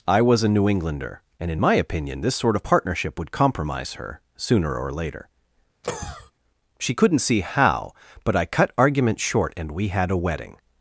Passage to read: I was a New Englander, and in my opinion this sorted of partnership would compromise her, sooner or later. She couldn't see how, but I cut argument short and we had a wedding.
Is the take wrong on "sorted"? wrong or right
wrong